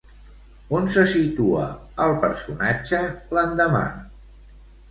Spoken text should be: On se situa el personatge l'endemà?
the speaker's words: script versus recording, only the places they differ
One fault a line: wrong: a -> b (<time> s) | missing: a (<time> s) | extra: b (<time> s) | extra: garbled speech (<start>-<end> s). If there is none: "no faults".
no faults